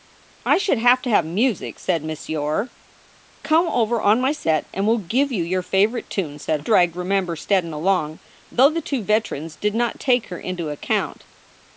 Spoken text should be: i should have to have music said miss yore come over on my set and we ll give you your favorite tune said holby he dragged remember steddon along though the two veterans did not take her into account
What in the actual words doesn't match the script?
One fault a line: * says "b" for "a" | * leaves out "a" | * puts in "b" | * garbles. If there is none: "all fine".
* leaves out "holby he"